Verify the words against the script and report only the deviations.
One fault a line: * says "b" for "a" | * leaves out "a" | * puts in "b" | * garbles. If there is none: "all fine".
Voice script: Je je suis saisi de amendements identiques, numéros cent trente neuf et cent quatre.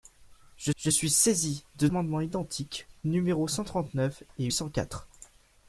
all fine